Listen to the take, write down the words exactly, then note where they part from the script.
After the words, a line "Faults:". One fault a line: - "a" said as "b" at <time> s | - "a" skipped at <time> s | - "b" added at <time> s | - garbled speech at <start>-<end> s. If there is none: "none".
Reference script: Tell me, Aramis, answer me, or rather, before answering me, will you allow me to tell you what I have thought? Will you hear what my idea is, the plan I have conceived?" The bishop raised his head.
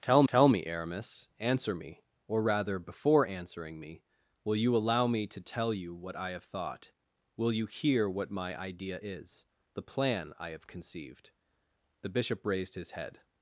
Tell tell me, Aramis, answer me, or rather, before answering me, will you allow me to tell you what I have thought? Will you hear what my idea is, the plan I have conceived?" The bishop raised his head.
Faults:
- "tell" added at 0.3 s